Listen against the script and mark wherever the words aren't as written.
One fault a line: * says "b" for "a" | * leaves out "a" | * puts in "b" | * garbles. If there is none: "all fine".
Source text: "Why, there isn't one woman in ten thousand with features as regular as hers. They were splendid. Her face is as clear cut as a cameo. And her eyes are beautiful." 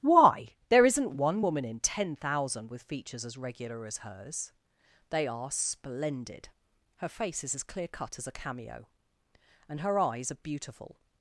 * says "are" for "were"